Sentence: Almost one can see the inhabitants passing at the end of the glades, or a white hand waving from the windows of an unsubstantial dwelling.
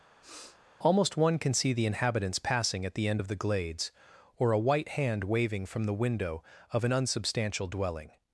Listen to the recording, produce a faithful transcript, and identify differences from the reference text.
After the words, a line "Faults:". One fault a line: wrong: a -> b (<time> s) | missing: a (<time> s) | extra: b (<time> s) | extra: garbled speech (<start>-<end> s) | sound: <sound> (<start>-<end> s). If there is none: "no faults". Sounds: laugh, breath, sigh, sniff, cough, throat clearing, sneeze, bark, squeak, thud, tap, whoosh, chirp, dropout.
Almost one can see the inhabitants passing at the end of the glades, or a white hand waving from the window of an unsubstantial dwelling.
Faults:
sound: sniff (0.2-0.6 s)
wrong: windows -> window (6.0 s)